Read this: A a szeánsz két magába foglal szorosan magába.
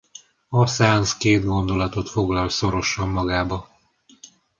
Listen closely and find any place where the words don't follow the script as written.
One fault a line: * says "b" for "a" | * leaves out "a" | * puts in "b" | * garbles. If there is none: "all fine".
* leaves out "a"
* says "gondolatot" for "magába"